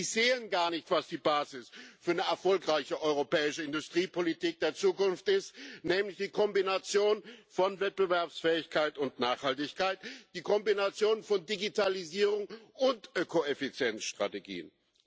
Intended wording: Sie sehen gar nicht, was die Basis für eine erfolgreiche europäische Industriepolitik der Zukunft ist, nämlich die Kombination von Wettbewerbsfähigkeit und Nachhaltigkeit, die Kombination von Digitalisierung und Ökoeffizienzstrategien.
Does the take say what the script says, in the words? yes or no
yes